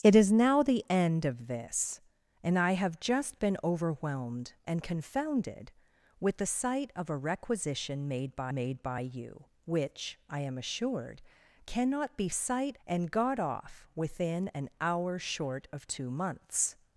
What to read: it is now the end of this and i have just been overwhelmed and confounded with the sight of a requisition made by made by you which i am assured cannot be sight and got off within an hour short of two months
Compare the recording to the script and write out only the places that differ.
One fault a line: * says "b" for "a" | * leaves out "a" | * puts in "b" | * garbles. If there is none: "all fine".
all fine